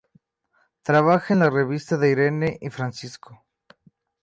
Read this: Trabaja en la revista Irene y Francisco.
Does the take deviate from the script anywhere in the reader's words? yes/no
yes